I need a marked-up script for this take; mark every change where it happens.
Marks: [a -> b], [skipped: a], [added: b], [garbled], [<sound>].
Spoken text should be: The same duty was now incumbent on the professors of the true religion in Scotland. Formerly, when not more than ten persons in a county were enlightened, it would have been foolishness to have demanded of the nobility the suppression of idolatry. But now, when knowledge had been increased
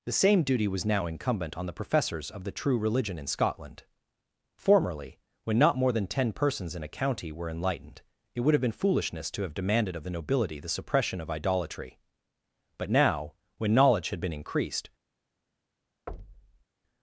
The same duty was now incumbent on the professors of the true religion in Scotland. Formerly, when not more than ten persons in a county were enlightened, it would have been foolishness to have demanded of the nobility the suppression of idolatry. But now, when knowledge had been increased [thud]